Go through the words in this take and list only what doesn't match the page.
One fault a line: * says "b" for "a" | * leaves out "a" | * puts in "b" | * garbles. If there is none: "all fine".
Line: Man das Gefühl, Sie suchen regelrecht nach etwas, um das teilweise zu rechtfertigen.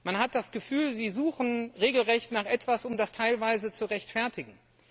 * puts in "hat"